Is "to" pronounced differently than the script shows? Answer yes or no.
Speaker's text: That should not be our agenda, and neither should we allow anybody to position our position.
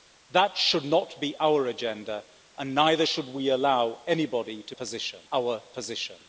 no